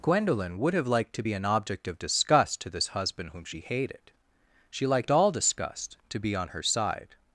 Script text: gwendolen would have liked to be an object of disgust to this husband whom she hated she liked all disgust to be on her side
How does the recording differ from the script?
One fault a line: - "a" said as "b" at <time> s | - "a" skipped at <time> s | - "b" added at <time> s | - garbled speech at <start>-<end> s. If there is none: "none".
none